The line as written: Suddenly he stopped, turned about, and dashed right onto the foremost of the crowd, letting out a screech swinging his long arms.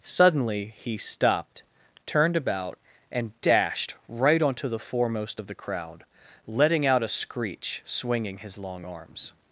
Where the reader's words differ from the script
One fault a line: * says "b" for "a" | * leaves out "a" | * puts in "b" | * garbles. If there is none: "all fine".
all fine